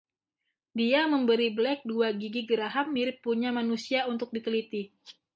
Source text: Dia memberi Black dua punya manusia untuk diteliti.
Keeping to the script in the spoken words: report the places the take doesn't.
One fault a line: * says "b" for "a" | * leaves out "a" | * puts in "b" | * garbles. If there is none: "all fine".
* puts in "gigi geraham mirip"